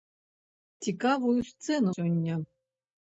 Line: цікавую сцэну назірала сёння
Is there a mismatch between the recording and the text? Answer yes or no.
yes